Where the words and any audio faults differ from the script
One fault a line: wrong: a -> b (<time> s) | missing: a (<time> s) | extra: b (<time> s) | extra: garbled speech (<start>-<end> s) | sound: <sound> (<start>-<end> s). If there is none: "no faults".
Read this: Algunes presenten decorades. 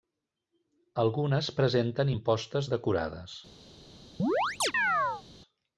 extra: impostes (2.1 s)
sound: chirp (4.2-5.2 s)